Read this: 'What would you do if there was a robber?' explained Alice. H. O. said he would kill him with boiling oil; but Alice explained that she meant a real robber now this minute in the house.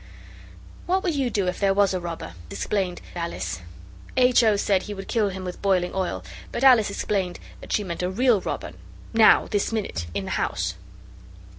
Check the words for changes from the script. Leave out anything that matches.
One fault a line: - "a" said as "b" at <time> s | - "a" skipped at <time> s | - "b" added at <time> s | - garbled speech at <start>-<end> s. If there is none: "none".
none